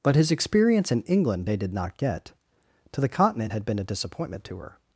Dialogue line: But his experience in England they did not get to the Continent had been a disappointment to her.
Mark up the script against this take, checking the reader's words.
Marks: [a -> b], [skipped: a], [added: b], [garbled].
But his experience in England they did not get to the Continent had been a disappointment to her.